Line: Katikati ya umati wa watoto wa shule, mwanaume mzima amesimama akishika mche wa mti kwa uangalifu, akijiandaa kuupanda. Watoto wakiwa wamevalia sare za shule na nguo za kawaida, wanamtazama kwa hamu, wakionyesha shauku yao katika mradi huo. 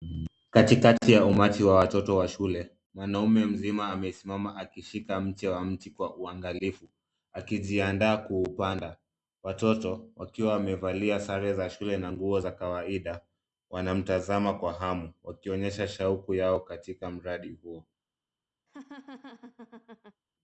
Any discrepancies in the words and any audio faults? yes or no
yes